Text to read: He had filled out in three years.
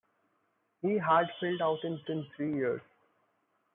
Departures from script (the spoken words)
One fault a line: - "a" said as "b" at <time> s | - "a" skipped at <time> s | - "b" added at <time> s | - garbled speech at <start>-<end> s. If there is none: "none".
- "in" added at 2.1 s